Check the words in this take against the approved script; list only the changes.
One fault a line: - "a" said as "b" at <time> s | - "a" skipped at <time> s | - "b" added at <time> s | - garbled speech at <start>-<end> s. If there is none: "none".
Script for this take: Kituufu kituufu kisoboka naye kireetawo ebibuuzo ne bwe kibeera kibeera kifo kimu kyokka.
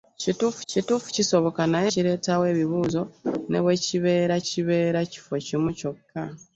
none